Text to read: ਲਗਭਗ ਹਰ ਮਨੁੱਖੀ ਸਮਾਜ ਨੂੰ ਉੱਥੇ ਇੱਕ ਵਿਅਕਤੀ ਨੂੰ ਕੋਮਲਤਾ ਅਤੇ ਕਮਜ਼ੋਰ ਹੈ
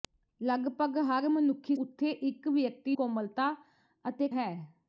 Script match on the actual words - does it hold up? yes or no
no